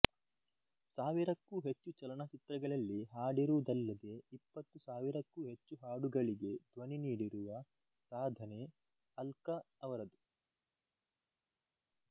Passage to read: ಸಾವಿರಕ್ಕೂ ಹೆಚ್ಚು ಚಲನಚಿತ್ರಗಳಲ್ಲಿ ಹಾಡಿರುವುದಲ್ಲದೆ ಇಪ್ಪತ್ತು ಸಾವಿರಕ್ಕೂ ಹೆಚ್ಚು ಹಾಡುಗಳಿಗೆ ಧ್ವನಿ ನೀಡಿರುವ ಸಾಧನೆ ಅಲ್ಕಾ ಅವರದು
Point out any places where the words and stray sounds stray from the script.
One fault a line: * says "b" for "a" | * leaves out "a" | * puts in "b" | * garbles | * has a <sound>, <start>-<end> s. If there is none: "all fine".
all fine